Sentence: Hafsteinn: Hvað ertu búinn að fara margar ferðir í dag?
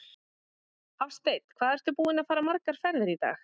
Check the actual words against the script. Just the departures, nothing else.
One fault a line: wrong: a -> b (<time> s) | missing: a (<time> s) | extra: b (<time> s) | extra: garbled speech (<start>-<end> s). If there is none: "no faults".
no faults